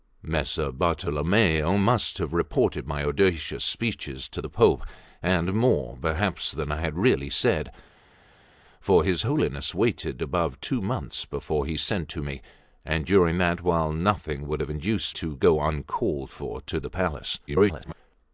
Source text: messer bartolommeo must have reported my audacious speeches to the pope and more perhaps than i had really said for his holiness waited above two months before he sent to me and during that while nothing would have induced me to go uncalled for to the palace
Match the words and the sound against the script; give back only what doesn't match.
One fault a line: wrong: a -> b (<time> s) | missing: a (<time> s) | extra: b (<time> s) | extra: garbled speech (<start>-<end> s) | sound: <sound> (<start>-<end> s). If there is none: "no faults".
missing: me (15.1 s)
extra: garbled speech (17.5-17.9 s)